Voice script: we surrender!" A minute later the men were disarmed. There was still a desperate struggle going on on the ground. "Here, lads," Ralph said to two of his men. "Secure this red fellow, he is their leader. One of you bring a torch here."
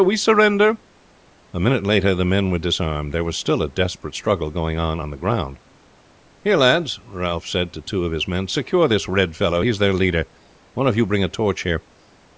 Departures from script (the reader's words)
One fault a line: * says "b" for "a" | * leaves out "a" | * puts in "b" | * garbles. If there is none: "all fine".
all fine